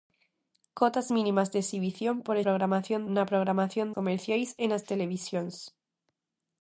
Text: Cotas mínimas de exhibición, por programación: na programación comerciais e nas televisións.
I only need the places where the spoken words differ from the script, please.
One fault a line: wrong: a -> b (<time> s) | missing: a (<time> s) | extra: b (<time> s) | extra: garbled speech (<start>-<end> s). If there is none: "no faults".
no faults